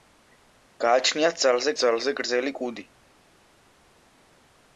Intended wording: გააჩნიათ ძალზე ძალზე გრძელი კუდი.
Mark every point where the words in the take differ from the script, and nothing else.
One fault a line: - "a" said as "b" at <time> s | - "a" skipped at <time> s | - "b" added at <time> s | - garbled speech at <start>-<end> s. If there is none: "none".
none